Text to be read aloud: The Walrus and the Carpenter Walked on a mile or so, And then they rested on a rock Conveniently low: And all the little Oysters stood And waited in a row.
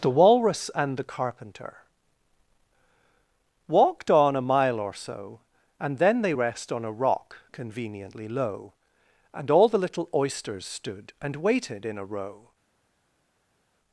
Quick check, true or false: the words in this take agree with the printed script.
false